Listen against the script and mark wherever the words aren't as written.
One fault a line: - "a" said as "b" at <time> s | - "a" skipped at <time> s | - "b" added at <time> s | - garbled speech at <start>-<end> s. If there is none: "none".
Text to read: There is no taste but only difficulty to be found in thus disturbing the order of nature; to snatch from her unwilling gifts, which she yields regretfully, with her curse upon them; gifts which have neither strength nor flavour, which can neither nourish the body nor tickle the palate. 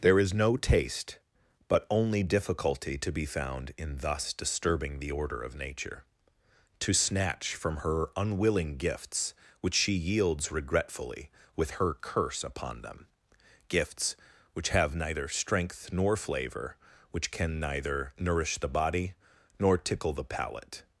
none